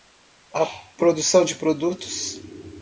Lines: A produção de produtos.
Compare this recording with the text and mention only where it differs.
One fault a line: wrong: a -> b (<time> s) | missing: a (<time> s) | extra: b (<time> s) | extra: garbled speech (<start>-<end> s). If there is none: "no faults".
no faults